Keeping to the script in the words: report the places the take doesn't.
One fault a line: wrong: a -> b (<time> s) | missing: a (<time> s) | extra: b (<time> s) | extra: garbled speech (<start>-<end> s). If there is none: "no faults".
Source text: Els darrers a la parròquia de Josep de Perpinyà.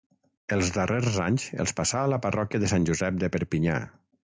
extra: anys els passà (1.2 s)
extra: Sant (2.8 s)